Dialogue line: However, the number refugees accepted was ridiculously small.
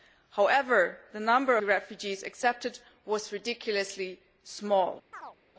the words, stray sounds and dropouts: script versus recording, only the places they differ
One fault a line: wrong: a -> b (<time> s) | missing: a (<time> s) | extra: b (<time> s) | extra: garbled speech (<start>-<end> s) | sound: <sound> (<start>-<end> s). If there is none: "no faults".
sound: chirp (5.1-5.4 s)